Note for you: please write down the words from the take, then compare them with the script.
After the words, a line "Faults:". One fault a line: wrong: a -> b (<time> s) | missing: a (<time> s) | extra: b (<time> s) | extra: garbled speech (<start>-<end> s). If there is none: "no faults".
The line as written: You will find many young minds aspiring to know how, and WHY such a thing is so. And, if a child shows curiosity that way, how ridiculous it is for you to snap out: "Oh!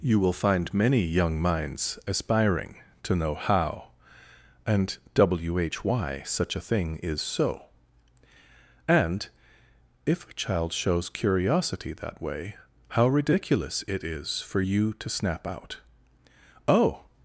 You will find many young minds aspiring to know how, and WHY such a thing is so. And, if a child shows curiosity that way, how ridiculous it is for you to snap out: "Oh!
Faults:
no faults